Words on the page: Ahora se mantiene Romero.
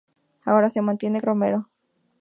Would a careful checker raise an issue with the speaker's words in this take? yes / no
no